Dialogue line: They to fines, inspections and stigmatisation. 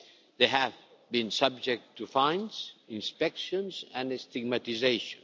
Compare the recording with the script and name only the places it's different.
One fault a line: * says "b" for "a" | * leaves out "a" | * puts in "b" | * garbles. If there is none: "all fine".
* puts in "have been subject"